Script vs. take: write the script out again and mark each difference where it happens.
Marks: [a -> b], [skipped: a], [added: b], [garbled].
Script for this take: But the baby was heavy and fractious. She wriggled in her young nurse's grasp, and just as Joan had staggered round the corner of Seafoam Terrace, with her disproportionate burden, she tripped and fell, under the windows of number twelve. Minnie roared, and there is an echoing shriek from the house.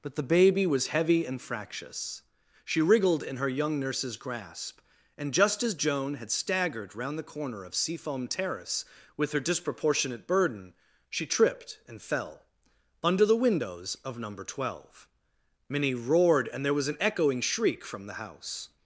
But the baby was heavy and fractious. She wriggled in her young nurse's grasp, and just as Joan had staggered round the corner of Seafoam Terrace, with her disproportionate burden, she tripped and fell, under the windows of number twelve. Minnie roared, and there [is -> was] an echoing shriek from the house.